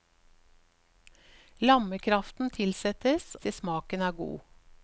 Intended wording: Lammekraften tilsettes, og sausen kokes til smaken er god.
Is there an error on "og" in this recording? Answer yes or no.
yes